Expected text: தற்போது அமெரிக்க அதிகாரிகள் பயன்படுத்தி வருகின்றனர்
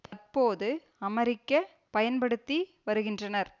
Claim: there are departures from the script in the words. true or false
true